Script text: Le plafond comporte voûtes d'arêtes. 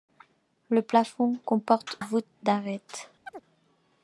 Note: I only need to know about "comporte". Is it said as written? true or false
true